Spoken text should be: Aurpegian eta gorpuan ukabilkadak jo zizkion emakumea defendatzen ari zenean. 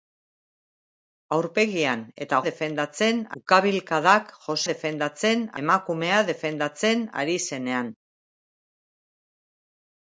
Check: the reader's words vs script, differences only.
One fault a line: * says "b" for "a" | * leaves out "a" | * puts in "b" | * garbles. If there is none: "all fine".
* says "defendatzen" for "gorpuan"
* says "defendatzen" for "zizkion"